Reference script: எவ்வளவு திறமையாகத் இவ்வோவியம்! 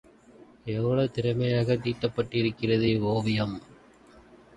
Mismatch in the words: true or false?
true